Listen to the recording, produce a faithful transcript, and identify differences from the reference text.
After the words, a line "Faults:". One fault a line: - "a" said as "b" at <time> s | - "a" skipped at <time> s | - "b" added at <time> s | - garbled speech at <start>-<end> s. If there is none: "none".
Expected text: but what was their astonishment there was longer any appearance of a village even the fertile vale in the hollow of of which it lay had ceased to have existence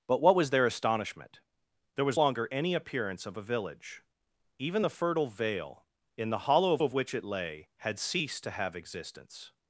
but what was their astonishment there was longer any appearance of a village even the fertile vale in the hollow of of which it lay had ceased to have existence
Faults:
none